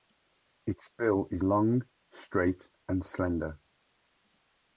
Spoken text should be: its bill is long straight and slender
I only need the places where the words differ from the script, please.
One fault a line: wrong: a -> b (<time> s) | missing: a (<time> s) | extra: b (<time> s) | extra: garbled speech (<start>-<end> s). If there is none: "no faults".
no faults